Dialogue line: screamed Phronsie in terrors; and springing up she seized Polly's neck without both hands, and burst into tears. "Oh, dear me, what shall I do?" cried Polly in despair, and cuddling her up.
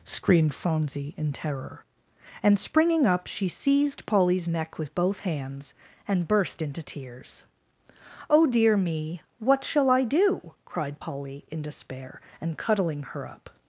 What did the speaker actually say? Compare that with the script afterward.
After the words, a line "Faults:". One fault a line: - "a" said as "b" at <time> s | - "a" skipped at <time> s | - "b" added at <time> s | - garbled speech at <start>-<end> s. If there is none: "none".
screamed Phronsie in terror; and springing up she seized Polly's neck with both hands, and burst into tears. "Oh, dear me, what shall I do?" cried Polly in despair, and cuddling her up.
Faults:
- "terrors" said as "terror" at 1.3 s
- "without" said as "with" at 4.8 s